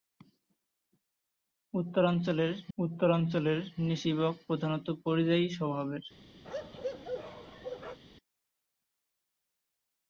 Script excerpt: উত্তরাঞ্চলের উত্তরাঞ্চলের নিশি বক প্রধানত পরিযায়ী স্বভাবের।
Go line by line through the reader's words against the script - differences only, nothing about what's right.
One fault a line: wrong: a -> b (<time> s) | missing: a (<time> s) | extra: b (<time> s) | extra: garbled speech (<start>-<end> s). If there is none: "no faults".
no faults